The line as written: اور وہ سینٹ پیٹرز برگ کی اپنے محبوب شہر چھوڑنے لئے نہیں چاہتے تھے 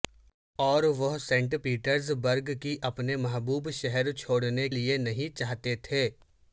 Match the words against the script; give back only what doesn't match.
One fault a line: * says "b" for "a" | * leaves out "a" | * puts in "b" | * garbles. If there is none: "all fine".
all fine